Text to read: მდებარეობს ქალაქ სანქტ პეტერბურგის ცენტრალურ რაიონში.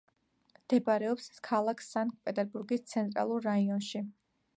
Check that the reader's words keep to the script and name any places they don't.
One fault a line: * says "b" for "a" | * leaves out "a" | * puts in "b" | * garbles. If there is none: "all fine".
all fine